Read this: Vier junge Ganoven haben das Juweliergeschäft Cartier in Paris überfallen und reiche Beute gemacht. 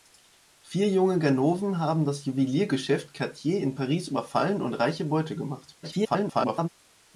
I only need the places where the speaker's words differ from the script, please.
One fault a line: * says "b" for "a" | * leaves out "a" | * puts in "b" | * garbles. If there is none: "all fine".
* garbles